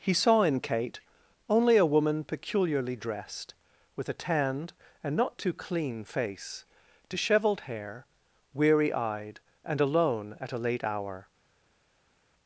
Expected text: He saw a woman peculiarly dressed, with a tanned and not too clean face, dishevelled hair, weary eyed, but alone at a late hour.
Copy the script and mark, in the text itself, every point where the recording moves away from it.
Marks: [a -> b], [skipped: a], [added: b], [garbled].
He saw [added: in Kate only] a woman peculiarly dressed, with a tanned and not too clean face, dishevelled hair, weary eyed, [but -> and] alone at a late hour.